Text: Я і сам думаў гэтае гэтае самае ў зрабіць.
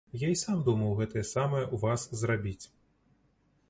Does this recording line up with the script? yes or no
no